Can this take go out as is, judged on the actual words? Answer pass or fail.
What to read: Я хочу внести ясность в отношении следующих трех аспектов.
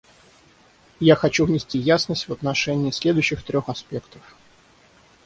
pass